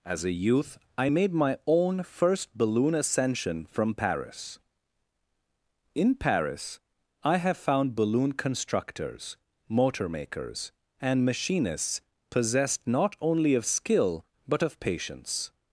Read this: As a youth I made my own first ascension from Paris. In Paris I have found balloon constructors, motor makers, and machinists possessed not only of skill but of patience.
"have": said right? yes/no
yes